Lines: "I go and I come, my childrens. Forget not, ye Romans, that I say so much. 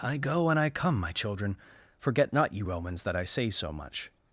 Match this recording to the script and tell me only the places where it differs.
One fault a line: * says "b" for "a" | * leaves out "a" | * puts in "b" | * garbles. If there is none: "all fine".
* says "children" for "childrens"